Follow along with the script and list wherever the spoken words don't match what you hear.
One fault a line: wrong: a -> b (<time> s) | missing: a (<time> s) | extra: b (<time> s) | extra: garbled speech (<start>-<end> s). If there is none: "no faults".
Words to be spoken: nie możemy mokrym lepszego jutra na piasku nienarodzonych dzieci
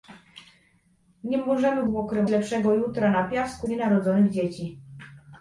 no faults